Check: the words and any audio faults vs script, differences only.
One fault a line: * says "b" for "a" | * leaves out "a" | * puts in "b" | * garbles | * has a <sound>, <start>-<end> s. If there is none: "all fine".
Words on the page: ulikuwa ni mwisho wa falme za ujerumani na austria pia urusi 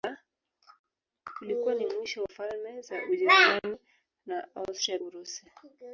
* leaves out "wa"
* leaves out "pia"